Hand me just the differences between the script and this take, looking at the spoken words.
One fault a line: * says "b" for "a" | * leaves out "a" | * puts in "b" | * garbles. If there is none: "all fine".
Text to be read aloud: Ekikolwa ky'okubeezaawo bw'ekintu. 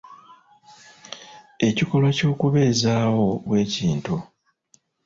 all fine